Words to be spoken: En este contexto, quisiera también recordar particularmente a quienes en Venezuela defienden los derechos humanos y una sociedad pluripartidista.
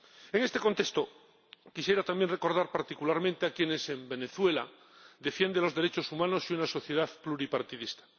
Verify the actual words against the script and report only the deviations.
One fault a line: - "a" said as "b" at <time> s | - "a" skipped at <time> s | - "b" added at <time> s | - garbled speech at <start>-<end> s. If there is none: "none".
none